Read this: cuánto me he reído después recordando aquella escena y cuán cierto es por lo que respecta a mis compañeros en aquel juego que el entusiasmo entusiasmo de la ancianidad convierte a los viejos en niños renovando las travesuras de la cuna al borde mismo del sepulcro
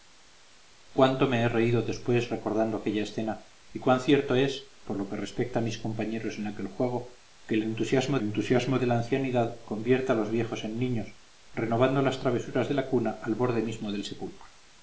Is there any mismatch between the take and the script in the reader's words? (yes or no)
no